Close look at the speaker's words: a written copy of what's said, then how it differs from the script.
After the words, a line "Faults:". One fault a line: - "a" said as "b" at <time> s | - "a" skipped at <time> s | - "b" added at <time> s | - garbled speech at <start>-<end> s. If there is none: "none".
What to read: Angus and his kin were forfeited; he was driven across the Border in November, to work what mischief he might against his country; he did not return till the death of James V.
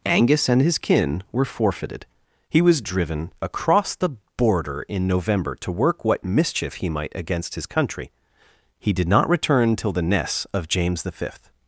Angus and his kin were forfeited; he was driven across the Border in November, to work what mischief he might against his country; he did not return till the ness of James V.
Faults:
- "death" said as "ness" at 10.0 s